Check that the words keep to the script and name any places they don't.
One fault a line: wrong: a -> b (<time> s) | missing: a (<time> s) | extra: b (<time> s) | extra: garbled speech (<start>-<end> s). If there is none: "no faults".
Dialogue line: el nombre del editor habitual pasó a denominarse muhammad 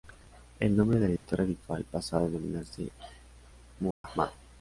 no faults